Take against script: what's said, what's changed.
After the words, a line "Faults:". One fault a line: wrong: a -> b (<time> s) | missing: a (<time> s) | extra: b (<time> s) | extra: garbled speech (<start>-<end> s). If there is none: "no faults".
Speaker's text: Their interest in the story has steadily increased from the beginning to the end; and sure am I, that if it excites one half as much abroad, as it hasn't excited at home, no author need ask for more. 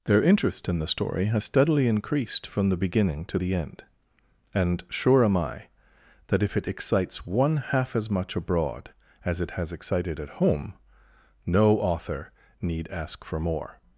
Their interest in the story has steadily increased from the beginning to the end; and sure am I, that if it excites one half as much abroad, as it has excited at home, no author need ask for more.
Faults:
wrong: hasn't -> has (9.5 s)